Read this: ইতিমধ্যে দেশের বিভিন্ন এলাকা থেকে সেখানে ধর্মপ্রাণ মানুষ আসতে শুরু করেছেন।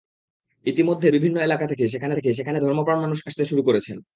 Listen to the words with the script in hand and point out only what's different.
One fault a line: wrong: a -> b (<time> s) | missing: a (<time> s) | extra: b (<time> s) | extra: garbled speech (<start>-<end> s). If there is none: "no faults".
missing: দেশের (1.1 s)
extra: থেকে সেখানে (2.1 s)